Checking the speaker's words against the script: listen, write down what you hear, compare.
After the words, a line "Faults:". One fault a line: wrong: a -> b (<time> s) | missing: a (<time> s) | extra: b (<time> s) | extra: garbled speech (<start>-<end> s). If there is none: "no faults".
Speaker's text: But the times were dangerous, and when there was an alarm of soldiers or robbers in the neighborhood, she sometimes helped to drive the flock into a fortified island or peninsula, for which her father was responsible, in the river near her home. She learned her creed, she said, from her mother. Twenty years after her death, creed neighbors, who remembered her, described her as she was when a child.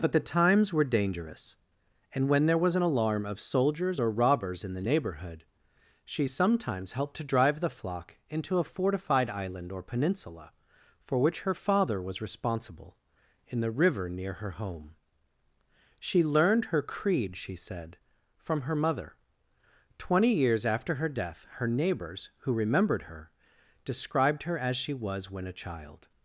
But the times were dangerous, and when there was an alarm of soldiers or robbers in the neighborhood, she sometimes helped to drive the flock into a fortified island or peninsula, for which her father was responsible, in the river near her home. She learned her creed, she said, from her mother. Twenty years after her death, her neighbors, who remembered her, described her as she was when a child.
Faults:
wrong: creed -> her (21.5 s)